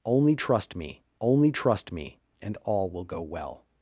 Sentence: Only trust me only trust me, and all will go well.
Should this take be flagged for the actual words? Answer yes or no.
no